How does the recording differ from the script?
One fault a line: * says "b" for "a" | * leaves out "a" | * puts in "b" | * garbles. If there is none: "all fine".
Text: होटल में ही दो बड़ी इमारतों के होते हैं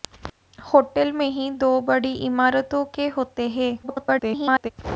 * garbles